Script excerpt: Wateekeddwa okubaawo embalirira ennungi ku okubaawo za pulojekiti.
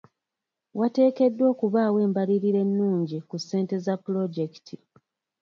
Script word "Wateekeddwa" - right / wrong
right